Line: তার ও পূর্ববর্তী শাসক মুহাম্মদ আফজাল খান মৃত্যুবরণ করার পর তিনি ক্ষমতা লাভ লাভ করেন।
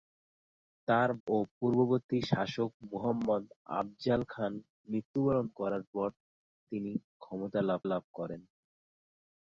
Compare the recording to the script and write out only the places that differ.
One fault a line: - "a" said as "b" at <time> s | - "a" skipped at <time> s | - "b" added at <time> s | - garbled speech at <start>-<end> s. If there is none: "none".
none